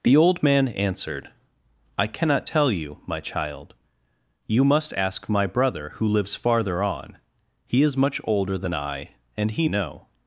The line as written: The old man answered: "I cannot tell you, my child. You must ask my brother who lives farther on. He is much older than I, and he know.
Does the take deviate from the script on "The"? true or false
false